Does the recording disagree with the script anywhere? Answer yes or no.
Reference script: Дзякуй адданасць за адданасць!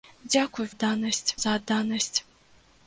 no